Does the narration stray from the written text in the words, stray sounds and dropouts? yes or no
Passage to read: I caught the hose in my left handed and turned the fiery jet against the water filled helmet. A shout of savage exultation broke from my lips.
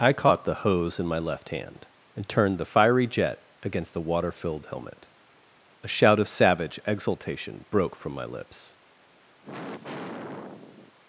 yes